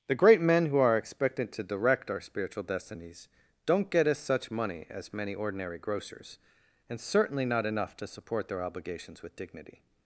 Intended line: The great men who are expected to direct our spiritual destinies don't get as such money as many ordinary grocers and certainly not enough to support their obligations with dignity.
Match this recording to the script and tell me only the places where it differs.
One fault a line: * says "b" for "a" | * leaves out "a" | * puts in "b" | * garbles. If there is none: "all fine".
all fine